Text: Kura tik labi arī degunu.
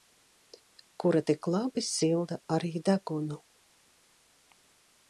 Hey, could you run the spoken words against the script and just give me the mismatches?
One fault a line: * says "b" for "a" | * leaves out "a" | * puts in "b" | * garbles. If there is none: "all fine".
* puts in "silda"